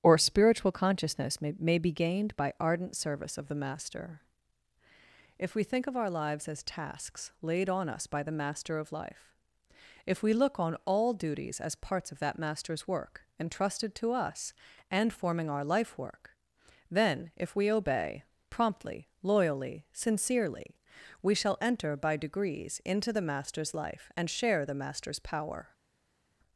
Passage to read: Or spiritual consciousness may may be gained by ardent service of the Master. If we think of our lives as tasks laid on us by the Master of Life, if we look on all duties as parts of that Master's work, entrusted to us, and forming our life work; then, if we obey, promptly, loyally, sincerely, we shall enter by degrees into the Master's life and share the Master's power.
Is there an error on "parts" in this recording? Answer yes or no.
no